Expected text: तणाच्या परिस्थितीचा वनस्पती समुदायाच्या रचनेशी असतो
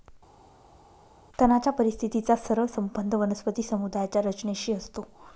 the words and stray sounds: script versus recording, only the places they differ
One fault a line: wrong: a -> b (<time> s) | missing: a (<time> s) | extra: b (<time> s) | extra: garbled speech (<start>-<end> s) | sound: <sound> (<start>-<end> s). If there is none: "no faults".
extra: सरळ संबंध (2.4 s)